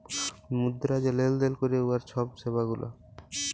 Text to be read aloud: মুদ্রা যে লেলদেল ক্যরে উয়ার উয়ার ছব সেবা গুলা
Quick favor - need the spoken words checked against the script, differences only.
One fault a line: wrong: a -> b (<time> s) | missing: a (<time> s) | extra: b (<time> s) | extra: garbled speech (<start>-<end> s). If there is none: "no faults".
missing: উয়ার (2.0 s)